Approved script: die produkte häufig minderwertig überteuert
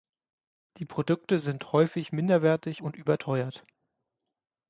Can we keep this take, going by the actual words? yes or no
no